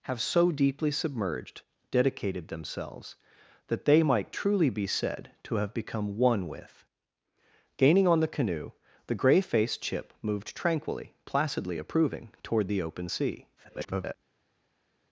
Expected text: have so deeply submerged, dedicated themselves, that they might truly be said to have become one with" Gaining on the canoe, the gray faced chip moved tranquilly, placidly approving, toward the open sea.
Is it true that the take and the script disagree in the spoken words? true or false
true